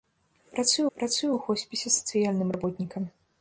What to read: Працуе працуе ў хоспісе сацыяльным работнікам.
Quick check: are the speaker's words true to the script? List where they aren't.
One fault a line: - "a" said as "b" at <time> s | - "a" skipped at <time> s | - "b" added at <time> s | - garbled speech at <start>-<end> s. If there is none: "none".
none